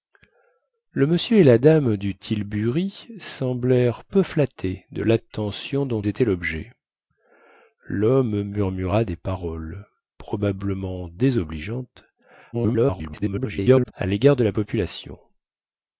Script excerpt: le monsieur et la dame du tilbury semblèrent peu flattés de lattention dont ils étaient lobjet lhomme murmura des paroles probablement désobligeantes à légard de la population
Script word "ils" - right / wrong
wrong